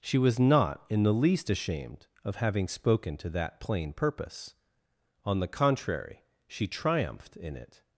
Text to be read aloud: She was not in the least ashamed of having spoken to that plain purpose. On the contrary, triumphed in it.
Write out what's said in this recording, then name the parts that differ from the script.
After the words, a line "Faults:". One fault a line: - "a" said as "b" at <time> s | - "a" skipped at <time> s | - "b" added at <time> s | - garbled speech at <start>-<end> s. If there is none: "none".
She was not in the least ashamed of having spoken to that plain purpose. On the contrary, she triumphed in it.
Faults:
- "she" added at 6.5 s